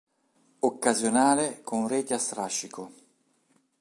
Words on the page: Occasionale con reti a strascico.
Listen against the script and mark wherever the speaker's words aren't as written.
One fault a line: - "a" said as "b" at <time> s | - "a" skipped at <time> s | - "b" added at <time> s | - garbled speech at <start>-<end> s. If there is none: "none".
none